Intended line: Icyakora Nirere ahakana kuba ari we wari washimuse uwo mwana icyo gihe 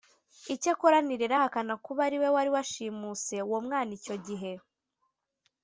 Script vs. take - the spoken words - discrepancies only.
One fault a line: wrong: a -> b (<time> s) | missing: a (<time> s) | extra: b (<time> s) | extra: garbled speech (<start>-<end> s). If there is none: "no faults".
no faults